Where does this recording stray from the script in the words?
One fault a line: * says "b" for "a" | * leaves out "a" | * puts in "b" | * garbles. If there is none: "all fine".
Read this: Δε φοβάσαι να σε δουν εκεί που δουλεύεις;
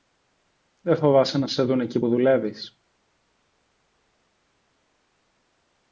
all fine